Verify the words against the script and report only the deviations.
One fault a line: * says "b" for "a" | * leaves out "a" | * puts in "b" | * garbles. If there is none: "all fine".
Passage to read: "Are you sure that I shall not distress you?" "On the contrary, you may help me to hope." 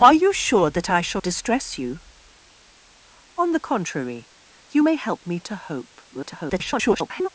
* leaves out "not"
* garbles